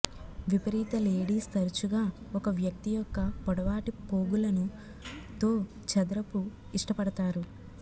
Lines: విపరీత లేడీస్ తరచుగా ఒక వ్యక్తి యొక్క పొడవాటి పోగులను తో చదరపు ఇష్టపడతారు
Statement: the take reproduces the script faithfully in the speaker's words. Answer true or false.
true